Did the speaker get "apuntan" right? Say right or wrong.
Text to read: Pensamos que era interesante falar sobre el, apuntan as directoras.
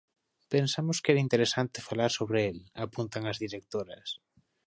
right